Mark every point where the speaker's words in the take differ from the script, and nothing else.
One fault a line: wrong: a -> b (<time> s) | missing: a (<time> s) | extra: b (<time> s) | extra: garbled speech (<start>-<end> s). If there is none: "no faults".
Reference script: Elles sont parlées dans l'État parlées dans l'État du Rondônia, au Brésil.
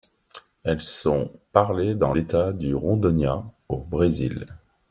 missing: parlées dans l'État (2.5 s)